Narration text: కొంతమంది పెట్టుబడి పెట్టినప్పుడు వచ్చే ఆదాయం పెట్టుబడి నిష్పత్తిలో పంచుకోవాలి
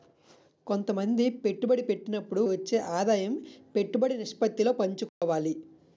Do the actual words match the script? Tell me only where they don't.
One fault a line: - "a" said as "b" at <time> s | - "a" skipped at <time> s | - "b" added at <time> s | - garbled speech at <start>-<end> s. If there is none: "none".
none